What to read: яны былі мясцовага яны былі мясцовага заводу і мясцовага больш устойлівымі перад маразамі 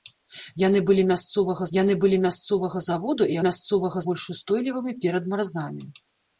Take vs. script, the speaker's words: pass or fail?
pass